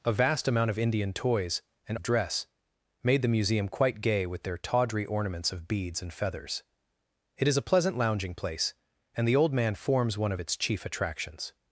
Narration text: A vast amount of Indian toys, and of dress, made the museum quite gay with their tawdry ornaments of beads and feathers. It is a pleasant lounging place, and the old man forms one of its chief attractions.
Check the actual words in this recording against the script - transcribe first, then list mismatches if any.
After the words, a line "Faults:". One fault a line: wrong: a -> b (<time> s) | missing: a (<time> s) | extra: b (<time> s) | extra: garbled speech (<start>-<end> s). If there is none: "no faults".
A vast amount of Indian toys, and of dress, made the museum quite gay with their tawdry ornaments of beads and feathers. It is a pleasant lounging place, and the old man forms one of its chief attractions.
Faults:
no faults